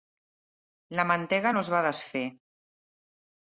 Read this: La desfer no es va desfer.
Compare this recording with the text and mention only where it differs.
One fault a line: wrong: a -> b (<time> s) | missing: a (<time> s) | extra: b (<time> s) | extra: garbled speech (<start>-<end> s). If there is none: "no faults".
wrong: desfer -> mantega (1.1 s)